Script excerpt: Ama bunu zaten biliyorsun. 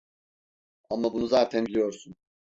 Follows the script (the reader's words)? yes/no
yes